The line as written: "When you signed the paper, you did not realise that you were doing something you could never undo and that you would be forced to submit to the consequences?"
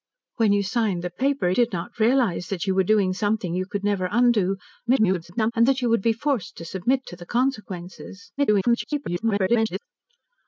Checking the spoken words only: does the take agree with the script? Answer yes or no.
no